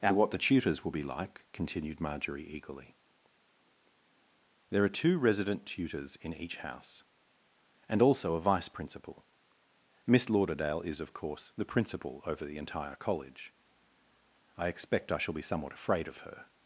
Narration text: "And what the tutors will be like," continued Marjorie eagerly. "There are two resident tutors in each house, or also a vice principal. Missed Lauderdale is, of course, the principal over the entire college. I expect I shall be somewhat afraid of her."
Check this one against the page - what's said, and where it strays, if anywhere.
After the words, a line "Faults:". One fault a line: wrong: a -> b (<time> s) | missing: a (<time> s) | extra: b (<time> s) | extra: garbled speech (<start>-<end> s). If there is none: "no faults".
"And what the tutors will be like," continued Marjorie eagerly. "There are two resident tutors in each house, and also a vice principal. Miss Lauderdale is, of course, the principal over the entire college. I expect I shall be somewhat afraid of her."
Faults:
wrong: or -> and (7.9 s)
wrong: Missed -> Miss (10.1 s)